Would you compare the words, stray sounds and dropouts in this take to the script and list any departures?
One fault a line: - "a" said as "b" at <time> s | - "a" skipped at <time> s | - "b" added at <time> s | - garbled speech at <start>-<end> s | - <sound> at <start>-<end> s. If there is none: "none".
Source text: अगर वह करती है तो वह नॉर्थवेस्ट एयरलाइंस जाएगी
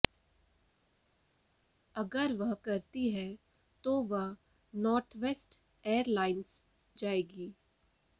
none